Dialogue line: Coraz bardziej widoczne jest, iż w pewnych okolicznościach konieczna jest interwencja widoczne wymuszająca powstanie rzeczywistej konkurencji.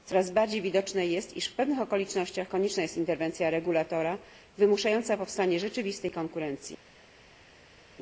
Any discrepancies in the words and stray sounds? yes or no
yes